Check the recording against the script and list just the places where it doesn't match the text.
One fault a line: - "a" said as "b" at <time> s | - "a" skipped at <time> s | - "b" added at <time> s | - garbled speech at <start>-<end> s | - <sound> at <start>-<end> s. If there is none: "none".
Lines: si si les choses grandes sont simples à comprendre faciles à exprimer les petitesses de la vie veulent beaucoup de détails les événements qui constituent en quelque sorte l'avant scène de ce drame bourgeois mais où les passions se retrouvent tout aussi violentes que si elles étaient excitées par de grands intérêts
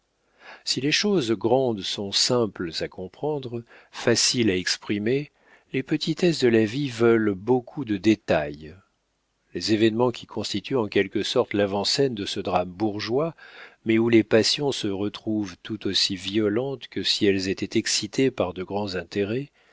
- "si" skipped at 0.8 s
- dropout at 8.2-8.3 s